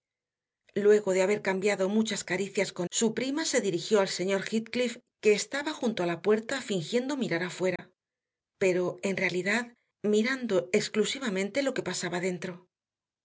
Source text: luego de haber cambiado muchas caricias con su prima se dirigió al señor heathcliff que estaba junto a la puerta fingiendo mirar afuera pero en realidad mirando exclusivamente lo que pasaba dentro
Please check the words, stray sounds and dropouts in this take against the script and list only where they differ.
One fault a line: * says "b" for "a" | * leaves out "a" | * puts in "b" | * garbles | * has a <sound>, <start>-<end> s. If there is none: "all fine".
* has a dropout, 7.8-7.8 s